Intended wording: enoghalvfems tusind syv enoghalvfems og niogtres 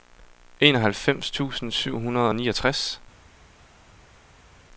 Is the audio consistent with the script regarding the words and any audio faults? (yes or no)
no